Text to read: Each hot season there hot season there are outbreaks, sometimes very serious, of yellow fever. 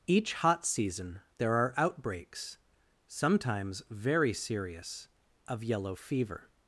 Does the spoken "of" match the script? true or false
true